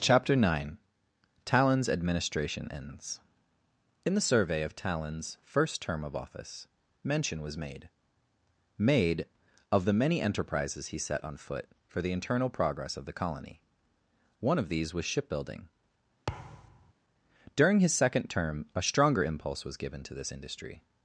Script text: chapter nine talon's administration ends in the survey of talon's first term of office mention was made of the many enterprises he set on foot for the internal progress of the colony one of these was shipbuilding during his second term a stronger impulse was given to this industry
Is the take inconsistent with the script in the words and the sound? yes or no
yes